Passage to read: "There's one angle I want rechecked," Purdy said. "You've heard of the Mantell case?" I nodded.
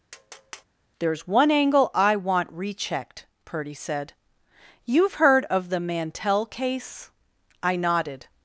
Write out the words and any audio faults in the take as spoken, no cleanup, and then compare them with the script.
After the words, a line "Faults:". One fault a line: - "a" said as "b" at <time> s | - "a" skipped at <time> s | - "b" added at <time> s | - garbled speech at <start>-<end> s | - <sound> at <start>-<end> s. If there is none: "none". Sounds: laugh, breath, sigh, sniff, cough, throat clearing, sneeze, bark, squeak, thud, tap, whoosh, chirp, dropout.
"There's one angle I want rechecked," Purdy said. "You've heard of the Mantell case?" I nodded.
Faults:
- tap at 0.1-0.6 s